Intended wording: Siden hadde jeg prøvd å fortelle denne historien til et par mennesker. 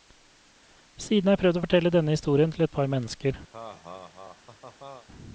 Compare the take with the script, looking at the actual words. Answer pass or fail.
fail